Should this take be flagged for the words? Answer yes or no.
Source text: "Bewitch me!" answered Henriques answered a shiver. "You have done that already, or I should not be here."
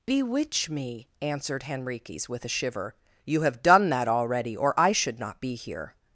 yes